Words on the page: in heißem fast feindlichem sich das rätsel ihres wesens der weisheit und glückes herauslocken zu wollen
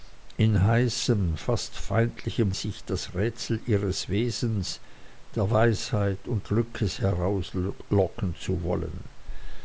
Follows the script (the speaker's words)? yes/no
yes